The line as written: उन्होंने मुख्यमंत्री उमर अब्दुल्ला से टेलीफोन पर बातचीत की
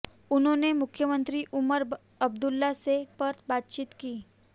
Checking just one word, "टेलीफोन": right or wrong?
wrong